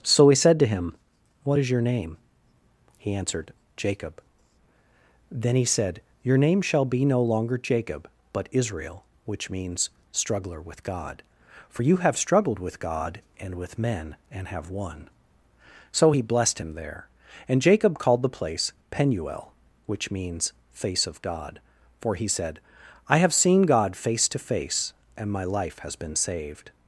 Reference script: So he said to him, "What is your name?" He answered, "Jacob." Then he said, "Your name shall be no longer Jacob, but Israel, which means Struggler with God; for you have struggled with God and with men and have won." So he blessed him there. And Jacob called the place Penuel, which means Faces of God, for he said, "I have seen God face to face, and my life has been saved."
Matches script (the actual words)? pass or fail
fail